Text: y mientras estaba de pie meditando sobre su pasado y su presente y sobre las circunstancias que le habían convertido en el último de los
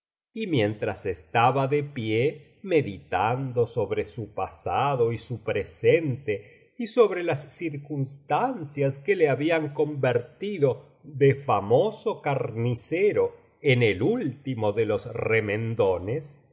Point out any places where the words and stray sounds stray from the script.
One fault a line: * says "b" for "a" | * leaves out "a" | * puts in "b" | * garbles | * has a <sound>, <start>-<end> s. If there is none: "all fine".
* puts in "de famoso carnicero"